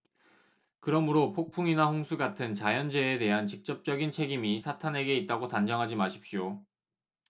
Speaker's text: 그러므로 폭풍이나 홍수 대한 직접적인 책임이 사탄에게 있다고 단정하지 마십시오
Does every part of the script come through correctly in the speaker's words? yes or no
no